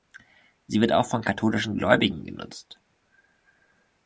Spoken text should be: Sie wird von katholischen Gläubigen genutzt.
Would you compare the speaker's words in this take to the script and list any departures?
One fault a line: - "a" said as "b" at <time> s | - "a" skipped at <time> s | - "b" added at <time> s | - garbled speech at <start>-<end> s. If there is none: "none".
- "auch" added at 0.9 s